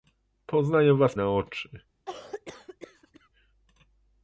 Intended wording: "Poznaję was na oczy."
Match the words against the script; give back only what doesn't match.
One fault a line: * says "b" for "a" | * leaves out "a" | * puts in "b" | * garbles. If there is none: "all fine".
all fine